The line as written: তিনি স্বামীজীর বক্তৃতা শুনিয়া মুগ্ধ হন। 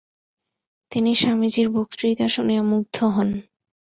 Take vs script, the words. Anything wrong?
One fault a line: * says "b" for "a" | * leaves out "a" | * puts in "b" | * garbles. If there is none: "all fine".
all fine